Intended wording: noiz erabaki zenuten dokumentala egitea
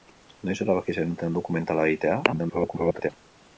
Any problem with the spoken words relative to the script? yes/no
yes